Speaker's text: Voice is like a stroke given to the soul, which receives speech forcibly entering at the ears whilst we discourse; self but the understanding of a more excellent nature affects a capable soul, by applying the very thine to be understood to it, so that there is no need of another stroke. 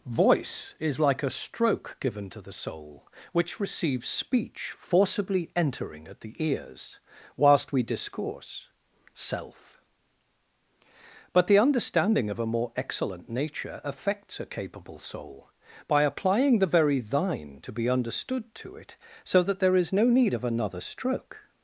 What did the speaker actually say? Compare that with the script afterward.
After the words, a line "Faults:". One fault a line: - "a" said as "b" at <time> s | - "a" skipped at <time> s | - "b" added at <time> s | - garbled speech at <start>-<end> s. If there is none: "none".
Voice is like a stroke given to the soul, which receives speech forcibly entering at the ears whilst we discourse; self but the understanding of a more excellent nature affects a capable soul, by applying the very thine to be understood to it, so that there is no need of another stroke.
Faults:
none